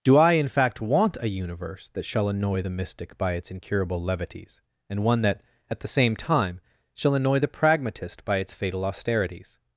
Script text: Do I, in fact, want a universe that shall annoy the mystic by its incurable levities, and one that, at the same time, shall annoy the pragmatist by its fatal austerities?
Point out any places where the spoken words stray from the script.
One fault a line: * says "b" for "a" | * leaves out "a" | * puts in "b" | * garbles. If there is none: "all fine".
all fine